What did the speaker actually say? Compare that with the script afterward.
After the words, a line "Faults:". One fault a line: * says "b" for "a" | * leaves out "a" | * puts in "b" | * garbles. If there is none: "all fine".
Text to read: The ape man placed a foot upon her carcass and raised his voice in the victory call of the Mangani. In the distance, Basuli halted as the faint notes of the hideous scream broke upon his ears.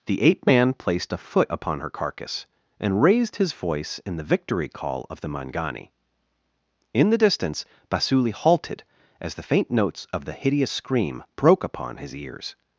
The ape man placed a foot upon her carcass and raised his voice in the victory call of the Mangani. In the distance, Basuli halted as the faint notes of the hideous scream broke upon his ears.
Faults:
all fine